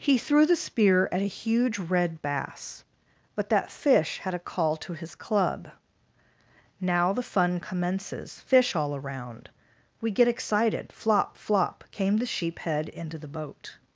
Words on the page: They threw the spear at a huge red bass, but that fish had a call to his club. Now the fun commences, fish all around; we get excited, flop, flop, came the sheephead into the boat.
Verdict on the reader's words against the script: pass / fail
fail